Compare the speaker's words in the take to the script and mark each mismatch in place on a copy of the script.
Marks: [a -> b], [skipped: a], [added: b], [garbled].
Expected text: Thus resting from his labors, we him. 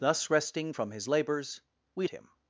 Thus resting from his labors, we him.